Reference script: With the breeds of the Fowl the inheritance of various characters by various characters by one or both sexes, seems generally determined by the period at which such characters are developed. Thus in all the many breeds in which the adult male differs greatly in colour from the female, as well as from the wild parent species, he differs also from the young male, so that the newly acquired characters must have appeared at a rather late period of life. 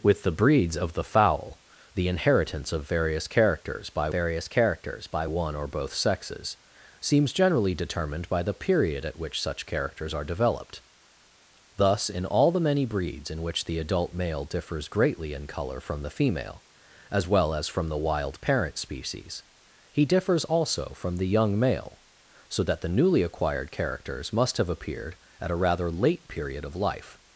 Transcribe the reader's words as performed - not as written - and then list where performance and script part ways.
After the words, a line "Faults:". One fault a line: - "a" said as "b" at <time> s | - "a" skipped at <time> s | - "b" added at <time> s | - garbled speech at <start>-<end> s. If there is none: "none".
With the breeds of the Fowl the inheritance of various characters by various characters by one or both sexes, seems generally determined by the period at which such characters are developed. Thus in all the many breeds in which the adult male differs greatly in colour from the female, as well as from the wild parent species, he differs also from the young male, so that the newly acquired characters must have appeared at a rather late period of life.
Faults:
none